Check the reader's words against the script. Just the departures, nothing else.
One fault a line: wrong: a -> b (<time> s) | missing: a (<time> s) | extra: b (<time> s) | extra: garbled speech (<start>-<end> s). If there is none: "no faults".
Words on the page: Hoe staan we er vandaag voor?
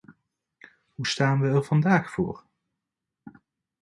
no faults